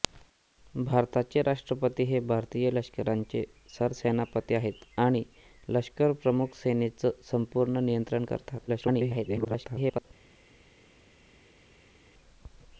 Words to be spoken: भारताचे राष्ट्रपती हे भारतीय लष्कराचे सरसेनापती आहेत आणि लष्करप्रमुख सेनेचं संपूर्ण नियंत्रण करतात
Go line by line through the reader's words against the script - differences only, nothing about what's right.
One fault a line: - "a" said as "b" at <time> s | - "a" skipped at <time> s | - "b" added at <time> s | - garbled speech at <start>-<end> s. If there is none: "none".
- garbled speech at 8.7-10.1 s